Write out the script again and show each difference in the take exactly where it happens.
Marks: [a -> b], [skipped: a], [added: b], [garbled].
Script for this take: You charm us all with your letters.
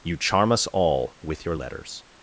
You charm us all with your letters.